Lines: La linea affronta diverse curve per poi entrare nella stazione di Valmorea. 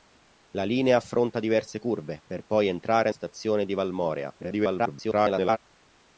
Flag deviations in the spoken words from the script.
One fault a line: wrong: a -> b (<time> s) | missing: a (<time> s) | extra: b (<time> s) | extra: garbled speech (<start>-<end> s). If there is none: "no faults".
missing: nella (3.1 s)
extra: garbled speech (4.4-5.6 s)